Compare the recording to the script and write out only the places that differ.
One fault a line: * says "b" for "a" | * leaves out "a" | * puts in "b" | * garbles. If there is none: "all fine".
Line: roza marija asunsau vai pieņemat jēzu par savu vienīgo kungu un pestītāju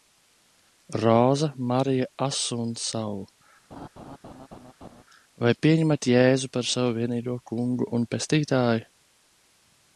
all fine